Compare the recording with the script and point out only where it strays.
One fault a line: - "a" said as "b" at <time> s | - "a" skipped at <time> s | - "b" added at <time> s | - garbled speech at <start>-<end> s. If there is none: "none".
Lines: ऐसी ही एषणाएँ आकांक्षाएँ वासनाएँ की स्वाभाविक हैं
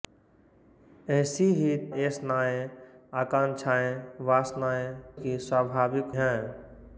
none